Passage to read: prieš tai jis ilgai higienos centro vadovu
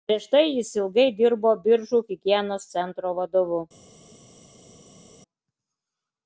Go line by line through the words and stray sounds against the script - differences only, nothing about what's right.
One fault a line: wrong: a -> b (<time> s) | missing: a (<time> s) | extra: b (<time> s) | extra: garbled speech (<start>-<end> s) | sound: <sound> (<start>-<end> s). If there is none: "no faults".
extra: dirbo biržų (1.2 s)